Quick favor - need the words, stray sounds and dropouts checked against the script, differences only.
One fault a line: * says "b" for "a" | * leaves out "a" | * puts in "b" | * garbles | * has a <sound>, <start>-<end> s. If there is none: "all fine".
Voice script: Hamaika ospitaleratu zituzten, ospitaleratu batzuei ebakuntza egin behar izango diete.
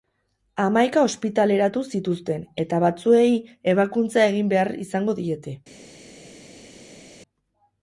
* says "eta" for "ospitaleratu"